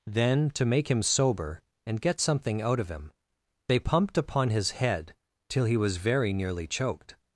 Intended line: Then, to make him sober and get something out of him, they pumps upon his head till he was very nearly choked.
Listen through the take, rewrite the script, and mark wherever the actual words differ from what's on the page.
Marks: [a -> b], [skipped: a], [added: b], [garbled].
Then, to make him sober and get something out of him, they [pumps -> pumped] upon his head till he was very nearly choked.